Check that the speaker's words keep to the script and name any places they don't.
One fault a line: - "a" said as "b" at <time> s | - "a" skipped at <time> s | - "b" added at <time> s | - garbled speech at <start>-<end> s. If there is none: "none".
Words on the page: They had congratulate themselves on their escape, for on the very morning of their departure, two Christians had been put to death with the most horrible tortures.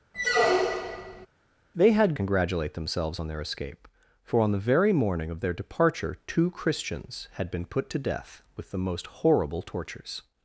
none